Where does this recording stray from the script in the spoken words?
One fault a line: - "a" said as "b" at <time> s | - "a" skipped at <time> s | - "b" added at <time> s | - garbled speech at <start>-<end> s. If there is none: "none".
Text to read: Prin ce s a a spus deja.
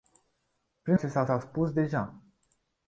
none